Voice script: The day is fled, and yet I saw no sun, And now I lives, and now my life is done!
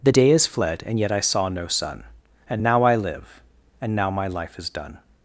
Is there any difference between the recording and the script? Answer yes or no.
yes